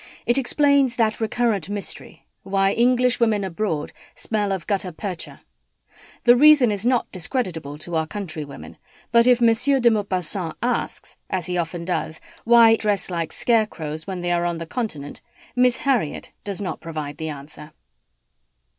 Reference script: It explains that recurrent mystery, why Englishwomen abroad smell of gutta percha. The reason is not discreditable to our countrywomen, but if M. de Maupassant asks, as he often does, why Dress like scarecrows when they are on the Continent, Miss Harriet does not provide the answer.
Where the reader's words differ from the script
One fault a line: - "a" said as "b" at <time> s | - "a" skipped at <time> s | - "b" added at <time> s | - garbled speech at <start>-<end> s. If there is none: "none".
none